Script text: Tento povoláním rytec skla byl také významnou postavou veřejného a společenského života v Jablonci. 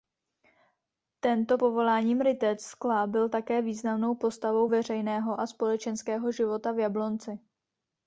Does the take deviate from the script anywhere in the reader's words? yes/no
no